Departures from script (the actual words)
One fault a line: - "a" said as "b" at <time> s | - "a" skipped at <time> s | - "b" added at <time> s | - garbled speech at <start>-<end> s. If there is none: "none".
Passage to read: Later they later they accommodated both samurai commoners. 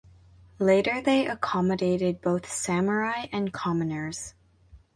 - "later they" skipped at 1.3 s
- "and" added at 3.3 s